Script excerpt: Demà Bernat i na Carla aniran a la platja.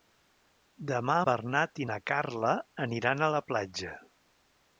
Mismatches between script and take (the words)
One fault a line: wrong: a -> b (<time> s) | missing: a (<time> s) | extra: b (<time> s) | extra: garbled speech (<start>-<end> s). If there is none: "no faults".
no faults